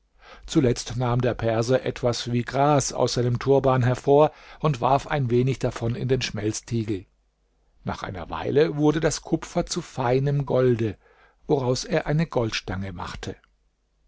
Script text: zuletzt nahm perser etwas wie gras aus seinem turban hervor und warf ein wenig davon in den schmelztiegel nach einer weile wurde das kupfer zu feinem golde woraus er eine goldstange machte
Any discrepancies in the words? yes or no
yes